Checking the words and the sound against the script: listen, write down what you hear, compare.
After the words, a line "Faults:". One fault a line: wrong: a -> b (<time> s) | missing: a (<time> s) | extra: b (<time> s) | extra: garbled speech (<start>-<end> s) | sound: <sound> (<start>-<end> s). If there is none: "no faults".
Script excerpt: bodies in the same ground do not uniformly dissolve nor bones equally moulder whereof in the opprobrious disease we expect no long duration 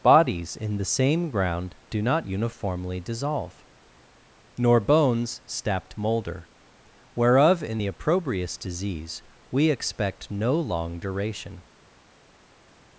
bodies in the same ground do not uniformly dissolve nor bones stapped moulder whereof in the opprobrious disease we expect no long duration
Faults:
wrong: equally -> stapped (5.4 s)